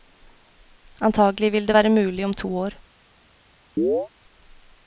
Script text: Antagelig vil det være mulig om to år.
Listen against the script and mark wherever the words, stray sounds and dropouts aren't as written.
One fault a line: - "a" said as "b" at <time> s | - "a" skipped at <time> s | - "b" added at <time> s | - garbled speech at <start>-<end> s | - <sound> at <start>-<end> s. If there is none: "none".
- chirp at 3.8-4.1 s